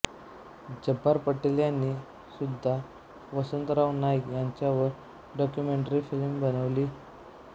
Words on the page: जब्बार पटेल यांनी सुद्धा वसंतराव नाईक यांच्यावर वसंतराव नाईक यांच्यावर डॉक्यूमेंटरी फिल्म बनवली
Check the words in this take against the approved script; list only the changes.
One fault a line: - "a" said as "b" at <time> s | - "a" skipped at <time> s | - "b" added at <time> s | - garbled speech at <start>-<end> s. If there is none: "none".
- "वसंतराव नाईक यांच्यावर" skipped at 4.9 s